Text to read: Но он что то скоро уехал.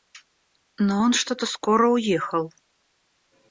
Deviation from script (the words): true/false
false